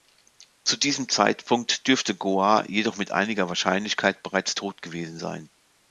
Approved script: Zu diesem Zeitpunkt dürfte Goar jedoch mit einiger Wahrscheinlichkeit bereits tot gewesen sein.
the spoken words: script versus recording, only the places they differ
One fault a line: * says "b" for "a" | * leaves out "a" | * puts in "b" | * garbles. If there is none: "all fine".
all fine